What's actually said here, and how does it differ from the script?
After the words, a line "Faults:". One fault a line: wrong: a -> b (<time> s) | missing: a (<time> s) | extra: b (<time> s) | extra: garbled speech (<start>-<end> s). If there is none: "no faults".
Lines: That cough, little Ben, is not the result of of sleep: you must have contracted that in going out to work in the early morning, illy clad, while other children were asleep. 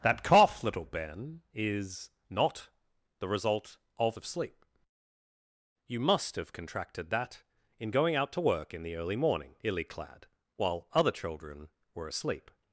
That cough, little Ben, is not the result of of sleep: you must have contracted that in going out to work in the early morning, illy clad, while other children were asleep.
Faults:
no faults